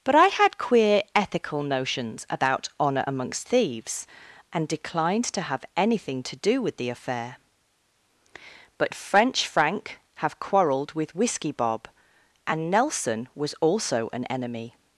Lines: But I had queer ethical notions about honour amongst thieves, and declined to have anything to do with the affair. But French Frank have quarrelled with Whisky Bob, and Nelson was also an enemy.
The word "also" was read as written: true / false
true